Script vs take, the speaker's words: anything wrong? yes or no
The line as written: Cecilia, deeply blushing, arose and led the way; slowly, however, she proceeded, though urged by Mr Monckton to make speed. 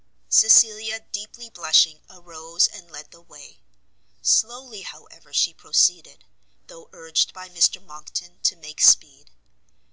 no